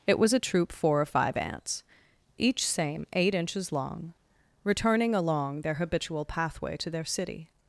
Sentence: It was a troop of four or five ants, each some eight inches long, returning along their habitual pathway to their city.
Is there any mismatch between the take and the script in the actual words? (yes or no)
yes